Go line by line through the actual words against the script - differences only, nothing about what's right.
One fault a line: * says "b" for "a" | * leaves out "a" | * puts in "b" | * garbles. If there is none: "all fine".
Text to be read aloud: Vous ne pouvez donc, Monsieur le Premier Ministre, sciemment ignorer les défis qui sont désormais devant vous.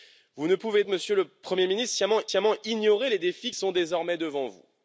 * leaves out "donc"
* puts in "sciemment"
* leaves out "qui"